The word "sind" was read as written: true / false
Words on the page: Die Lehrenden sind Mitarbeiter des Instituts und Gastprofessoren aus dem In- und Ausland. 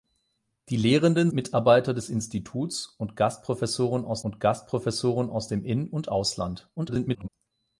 false